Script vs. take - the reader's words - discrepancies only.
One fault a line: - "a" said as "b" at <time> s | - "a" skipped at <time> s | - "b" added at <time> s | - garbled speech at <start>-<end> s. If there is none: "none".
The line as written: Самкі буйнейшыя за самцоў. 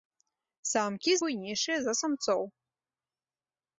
none